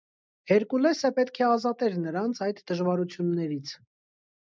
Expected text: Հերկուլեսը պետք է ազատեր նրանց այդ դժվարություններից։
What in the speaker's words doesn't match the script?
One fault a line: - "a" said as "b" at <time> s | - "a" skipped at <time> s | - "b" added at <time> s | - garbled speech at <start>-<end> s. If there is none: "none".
none